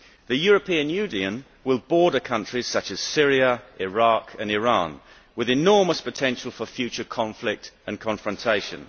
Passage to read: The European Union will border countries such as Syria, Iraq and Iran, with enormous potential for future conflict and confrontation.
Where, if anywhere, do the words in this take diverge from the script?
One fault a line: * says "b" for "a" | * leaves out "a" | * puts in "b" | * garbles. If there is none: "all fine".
all fine